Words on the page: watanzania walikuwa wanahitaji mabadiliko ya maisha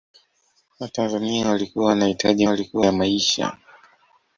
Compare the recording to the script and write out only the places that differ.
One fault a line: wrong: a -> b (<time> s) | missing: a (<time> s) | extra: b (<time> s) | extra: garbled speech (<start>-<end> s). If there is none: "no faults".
wrong: mabadiliko -> walikuwa (2.5 s)